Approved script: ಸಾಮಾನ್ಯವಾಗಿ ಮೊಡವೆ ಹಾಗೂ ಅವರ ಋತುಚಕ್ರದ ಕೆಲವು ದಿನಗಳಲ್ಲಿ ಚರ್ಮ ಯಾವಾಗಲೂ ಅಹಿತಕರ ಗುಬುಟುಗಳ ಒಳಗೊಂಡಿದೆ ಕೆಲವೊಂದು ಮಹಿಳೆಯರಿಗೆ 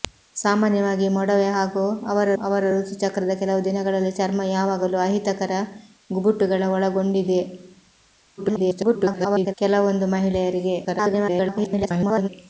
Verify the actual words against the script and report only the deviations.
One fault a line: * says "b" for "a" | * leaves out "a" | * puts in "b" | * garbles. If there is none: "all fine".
* puts in "ಅವರ"
* garbles
* garbles